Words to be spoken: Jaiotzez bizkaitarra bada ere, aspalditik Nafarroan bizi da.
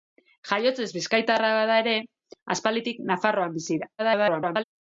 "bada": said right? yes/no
yes